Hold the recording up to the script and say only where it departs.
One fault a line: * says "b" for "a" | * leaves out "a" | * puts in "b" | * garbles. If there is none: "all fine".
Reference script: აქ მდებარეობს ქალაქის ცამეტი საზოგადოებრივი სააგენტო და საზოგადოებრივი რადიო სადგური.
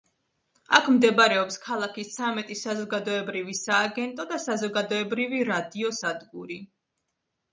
all fine